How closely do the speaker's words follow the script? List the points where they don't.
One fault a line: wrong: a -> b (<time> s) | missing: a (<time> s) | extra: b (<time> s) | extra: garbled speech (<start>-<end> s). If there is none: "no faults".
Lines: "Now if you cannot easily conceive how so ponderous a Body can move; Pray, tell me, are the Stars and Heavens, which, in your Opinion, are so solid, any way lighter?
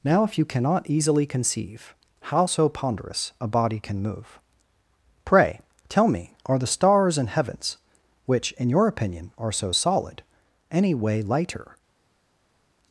no faults